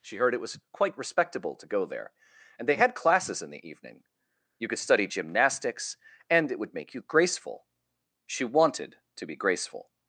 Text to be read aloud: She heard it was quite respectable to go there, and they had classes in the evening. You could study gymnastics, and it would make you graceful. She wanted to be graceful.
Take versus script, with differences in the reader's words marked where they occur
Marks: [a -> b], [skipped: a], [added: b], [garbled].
She heard it was quite respectable to go there, and they had classes in the evening. You could study gymnastics, and it would make you graceful. She wanted to be graceful.